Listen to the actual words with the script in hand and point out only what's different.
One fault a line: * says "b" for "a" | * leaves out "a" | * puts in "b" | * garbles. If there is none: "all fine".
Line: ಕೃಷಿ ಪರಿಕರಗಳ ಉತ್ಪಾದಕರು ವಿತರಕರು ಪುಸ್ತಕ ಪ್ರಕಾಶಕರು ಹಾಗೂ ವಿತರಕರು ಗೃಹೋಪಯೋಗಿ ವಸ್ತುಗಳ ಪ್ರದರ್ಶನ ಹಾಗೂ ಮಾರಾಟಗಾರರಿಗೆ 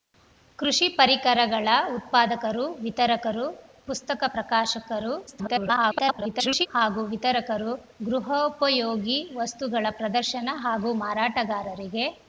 * garbles